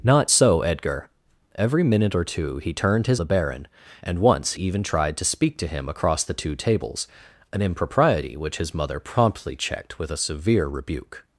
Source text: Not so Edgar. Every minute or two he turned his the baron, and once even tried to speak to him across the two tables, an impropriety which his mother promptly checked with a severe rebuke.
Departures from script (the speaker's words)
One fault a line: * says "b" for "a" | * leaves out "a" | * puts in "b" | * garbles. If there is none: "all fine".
all fine